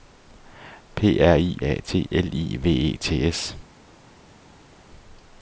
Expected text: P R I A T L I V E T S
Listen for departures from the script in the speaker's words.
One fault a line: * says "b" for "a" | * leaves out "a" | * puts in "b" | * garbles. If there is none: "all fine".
all fine